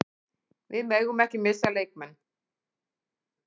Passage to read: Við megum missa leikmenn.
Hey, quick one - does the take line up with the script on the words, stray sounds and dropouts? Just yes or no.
no